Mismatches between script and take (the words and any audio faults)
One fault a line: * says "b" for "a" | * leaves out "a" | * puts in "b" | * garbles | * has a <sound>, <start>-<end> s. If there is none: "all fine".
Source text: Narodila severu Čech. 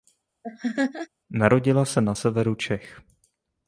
* has a laugh, 0.4-1.1 s
* puts in "se na"